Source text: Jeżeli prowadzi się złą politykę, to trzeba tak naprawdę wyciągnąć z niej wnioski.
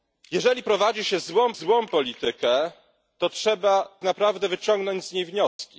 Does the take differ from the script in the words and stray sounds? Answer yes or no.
yes